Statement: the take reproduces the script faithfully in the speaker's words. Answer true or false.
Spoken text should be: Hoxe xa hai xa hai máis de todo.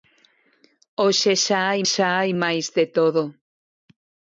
true